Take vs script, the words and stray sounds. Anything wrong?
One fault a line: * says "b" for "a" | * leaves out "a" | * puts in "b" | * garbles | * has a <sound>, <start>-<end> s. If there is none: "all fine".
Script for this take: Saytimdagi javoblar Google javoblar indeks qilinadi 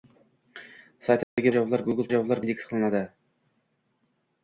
* has a dropout, 1.2-1.4 s